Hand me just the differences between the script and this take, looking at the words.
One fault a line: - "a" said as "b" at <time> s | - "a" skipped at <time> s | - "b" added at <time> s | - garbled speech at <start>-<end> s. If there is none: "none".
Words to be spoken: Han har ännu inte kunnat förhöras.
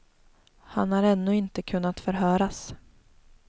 none